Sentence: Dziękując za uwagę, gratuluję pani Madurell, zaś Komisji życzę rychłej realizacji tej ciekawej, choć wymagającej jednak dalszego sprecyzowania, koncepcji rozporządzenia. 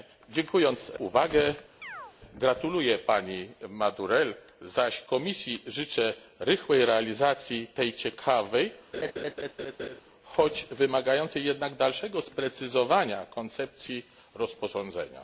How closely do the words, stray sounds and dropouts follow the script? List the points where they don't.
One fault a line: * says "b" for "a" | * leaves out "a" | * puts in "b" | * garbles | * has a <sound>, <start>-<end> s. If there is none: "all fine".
* leaves out "za"
* has a chirp, 1.8-2.2 s
* has a laugh, 8.9-10.0 s